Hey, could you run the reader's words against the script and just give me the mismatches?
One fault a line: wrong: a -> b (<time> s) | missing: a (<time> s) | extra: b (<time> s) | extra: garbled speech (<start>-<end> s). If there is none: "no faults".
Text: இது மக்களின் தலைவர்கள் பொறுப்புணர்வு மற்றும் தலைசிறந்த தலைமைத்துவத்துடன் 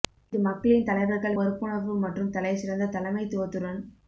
no faults